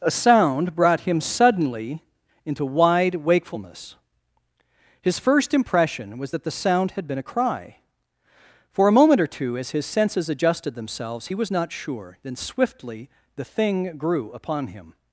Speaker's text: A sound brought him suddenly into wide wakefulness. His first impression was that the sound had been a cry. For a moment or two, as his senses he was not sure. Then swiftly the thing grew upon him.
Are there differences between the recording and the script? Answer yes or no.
yes